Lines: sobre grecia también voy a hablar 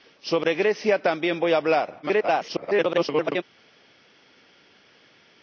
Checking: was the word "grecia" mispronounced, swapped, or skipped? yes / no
no